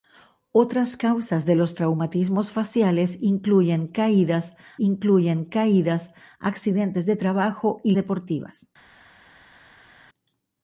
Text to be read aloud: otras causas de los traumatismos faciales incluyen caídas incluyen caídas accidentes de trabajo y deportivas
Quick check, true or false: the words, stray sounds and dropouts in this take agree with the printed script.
true